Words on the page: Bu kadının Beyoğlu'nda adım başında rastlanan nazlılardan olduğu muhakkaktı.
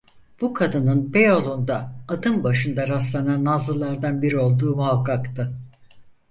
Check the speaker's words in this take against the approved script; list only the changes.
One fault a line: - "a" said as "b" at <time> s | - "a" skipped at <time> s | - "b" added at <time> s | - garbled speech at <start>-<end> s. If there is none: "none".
- "biri" added at 4.2 s